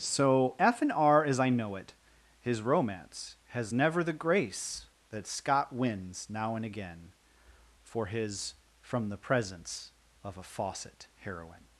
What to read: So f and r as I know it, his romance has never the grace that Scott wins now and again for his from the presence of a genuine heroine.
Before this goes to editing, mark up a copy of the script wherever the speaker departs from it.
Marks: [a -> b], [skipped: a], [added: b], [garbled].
So f and r as I know it, his romance has never the grace that Scott wins now and again for his from the presence of a [genuine -> faucet] heroine.